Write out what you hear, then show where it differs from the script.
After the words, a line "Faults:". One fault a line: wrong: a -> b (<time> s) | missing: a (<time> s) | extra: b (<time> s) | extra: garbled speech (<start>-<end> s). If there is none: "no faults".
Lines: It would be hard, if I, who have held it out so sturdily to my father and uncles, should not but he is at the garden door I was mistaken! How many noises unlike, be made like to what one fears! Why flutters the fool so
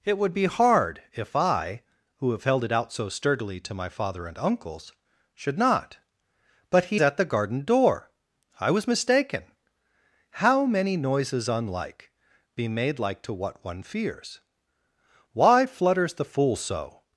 It would be hard, if I, who have held it out so sturdily to my father and uncles, should not but he at the garden door I was mistaken! How many noises unlike, be made like to what one fears! Why flutters the fool so
Faults:
missing: is (7.0 s)